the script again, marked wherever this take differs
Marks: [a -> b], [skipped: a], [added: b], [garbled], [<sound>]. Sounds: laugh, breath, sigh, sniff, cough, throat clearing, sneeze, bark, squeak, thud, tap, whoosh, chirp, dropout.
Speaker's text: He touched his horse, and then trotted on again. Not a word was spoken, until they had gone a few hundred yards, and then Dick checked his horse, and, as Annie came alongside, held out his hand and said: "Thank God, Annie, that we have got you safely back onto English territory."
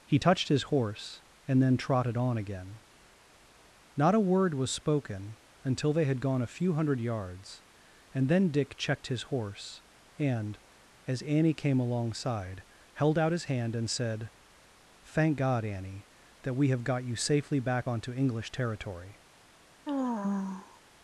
He touched his horse, and then trotted on again. Not a word was spoken, until they had gone a few hundred yards, and then Dick checked his horse, and, as Annie came alongside, held out his hand and said: "Thank God, Annie, that we have got you safely back onto English territory." [sigh]